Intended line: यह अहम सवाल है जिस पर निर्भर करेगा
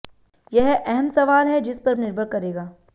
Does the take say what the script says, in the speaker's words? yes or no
yes